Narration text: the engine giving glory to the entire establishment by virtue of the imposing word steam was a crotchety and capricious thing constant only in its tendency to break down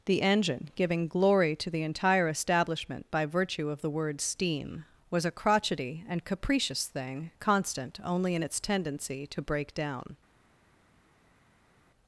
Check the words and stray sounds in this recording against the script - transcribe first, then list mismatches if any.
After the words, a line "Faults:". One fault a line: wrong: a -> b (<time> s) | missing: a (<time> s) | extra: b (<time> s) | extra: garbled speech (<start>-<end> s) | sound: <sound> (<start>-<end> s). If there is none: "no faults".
the engine giving glory to the entire establishment by virtue of the word steam was a crotchety and capricious thing constant only in its tendency to break down
Faults:
missing: imposing (3.9 s)